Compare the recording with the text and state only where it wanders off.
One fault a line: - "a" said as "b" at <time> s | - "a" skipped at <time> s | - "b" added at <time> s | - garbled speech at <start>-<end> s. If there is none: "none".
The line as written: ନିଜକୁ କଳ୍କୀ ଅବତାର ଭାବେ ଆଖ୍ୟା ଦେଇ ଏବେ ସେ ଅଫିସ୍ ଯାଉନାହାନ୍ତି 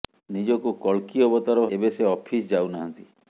- "ଭାବେ ଆଖ୍ୟା ଦେଇ" skipped at 1.6 s